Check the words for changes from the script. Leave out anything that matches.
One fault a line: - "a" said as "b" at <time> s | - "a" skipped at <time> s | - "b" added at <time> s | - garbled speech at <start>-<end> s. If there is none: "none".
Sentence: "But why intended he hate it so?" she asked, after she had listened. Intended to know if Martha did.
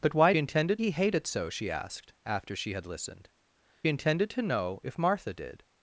none